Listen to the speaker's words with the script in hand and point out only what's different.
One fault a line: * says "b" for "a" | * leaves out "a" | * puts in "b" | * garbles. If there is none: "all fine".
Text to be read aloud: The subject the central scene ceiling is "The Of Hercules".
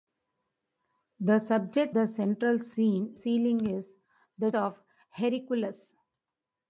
all fine